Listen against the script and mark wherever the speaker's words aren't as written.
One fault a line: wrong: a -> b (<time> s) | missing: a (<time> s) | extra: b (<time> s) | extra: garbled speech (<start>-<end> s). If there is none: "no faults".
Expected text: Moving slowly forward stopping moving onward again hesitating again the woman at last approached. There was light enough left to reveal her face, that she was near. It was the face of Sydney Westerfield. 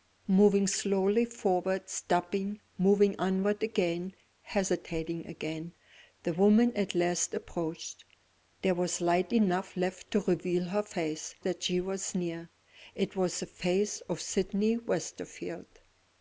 no faults